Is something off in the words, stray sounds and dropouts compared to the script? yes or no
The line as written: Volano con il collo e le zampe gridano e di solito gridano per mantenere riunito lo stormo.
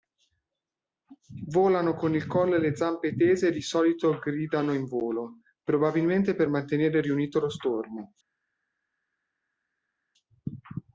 yes